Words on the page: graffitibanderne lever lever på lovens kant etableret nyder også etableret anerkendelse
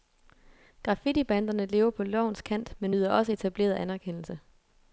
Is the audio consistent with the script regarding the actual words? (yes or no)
no